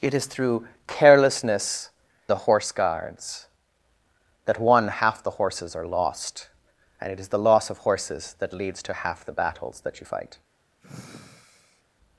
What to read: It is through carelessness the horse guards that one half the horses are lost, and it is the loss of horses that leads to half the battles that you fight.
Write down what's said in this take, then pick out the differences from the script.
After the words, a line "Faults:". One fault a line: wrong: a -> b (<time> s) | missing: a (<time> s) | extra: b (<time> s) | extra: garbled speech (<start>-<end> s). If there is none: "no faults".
It is through carelessness the horse guards that one half the horses are lost, and it is the loss of horses that leads to half the battles that you fight.
Faults:
no faults